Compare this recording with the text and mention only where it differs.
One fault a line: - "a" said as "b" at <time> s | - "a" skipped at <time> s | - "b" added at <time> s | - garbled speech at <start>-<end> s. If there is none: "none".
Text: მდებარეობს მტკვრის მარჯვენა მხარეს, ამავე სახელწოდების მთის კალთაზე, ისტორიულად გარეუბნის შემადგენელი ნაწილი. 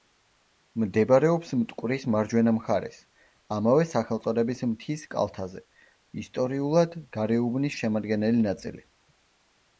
none